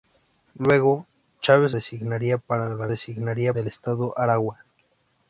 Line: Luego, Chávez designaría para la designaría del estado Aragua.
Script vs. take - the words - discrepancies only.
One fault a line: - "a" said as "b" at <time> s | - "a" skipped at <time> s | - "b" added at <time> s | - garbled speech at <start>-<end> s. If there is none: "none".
none